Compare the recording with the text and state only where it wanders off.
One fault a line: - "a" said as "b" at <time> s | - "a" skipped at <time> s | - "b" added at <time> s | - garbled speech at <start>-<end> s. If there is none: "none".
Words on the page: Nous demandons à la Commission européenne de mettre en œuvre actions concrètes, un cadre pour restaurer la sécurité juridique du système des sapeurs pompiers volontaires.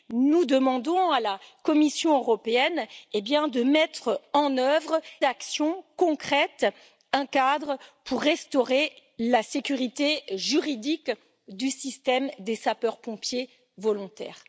none